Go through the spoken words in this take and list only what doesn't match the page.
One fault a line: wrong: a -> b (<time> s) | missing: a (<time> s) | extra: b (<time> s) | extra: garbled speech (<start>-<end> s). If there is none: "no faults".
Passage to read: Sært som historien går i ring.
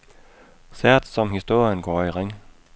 no faults